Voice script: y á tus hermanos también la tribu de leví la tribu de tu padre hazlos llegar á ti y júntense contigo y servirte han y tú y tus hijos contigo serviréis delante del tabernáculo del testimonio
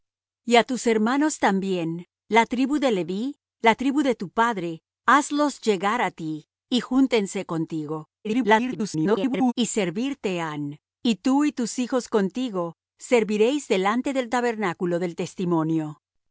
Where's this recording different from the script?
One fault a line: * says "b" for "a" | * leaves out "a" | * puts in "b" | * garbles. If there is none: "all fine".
* garbles